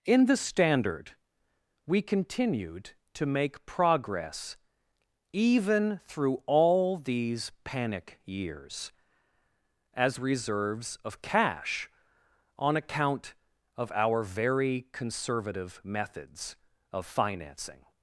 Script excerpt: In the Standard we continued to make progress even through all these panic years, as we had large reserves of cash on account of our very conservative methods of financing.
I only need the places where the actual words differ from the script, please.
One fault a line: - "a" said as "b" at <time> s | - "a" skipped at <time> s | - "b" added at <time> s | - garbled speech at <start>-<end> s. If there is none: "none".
- "we had large" skipped at 10.2 s